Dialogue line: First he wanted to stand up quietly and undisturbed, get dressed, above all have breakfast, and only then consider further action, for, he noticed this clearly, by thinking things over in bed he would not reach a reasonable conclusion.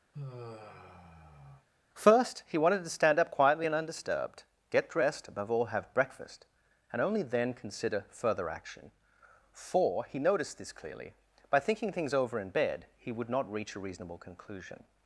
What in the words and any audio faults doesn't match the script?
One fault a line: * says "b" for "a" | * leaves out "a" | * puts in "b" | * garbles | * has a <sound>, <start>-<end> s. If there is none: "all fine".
* has a sigh, 0.1-1.7 s